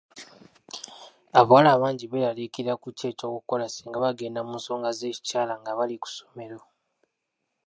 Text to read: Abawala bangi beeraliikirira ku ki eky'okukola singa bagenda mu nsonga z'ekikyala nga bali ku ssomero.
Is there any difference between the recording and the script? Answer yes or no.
no